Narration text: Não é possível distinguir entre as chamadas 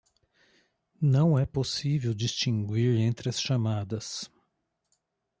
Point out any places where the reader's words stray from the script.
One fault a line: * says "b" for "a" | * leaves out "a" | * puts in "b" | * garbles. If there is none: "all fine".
all fine